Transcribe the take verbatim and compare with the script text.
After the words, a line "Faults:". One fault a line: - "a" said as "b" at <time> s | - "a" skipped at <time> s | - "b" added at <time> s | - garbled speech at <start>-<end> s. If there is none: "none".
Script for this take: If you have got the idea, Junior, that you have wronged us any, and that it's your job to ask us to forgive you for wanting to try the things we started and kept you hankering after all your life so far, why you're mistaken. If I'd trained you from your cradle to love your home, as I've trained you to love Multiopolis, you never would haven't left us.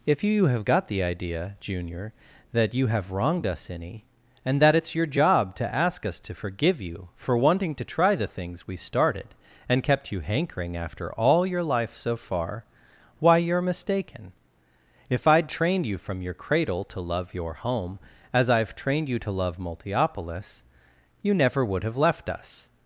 If you have got the idea, Junior, that you have wronged us any, and that it's your job to ask us to forgive you for wanting to try the things we started and kept you hankering after all your life so far, why you're mistaken. If I'd trained you from your cradle to love your home, as I've trained you to love Multiopolis, you never would have left us.
Faults:
- "haven't" said as "have" at 21.8 s